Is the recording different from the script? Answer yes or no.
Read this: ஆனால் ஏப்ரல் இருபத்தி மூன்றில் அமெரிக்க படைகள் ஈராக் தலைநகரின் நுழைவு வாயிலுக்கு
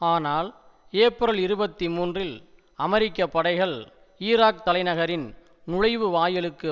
no